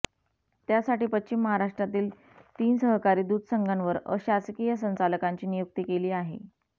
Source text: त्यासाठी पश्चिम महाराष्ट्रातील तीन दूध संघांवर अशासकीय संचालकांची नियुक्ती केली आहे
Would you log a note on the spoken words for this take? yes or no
yes